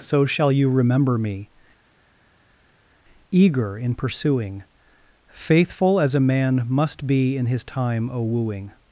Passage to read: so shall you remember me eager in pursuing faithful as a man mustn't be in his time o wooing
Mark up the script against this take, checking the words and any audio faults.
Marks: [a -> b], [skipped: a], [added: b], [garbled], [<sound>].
so shall you remember me eager in pursuing faithful as a man [mustn't -> must] be in his time o wooing